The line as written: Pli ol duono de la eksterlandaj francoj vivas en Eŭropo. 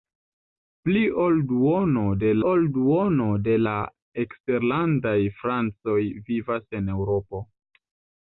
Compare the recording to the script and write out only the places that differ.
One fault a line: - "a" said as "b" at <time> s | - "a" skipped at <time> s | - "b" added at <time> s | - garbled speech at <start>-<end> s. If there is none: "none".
- "ol duono de" added at 2.5 s